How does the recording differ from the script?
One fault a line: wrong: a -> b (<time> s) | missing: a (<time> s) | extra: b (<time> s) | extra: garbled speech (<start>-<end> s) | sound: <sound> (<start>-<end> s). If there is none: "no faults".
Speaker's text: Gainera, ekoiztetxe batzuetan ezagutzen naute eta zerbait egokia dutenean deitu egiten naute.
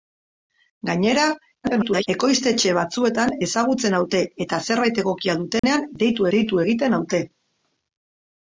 extra: garbled speech (1.6-2.1 s)
sound: dropout (5.6-5.6 s)
extra: deitu (6.4 s)